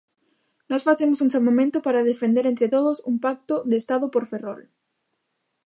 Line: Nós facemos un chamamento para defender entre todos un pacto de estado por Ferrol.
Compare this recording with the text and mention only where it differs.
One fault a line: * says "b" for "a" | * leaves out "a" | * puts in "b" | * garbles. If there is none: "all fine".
all fine